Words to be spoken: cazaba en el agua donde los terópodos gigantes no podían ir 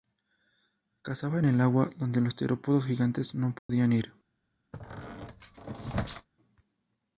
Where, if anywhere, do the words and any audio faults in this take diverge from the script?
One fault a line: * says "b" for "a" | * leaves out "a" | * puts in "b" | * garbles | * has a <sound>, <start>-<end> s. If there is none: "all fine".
* has a dropout, 3.6-3.7 s
* has a squeak, 4.7-6.3 s